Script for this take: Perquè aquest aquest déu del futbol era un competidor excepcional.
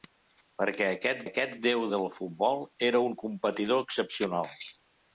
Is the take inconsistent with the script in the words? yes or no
no